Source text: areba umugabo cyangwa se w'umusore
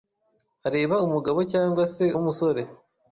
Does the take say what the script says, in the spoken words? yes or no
yes